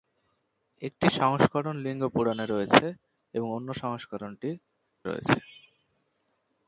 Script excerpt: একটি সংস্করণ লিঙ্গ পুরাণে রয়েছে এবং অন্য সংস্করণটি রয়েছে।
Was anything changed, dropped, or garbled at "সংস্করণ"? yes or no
no